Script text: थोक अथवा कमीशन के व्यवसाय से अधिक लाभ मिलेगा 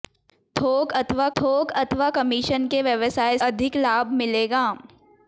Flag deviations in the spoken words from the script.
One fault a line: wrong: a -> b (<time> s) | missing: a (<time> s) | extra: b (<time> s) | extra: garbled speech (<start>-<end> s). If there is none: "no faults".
extra: थोक अथवा (1.4 s)
missing: से (3.4 s)